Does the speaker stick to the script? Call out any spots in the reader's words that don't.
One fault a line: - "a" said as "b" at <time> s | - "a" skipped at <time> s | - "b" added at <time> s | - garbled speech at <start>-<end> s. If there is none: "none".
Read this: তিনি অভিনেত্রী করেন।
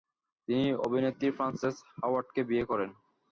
- "ফ্রান্সেস হাওয়ার্ডকে বিয়ে" added at 1.4 s